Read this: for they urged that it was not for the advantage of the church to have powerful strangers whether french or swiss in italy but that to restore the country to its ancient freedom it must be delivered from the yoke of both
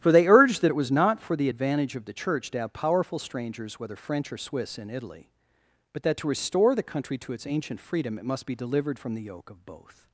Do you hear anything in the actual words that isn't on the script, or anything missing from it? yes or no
no